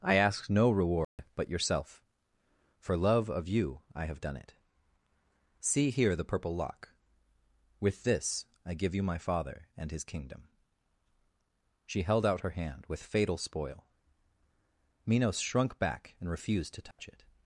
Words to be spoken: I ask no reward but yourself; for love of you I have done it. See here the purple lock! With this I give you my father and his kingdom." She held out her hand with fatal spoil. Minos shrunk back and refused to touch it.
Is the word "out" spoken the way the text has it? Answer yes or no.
yes